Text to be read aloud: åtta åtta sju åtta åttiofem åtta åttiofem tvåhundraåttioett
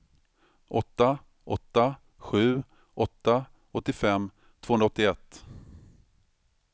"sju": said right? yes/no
yes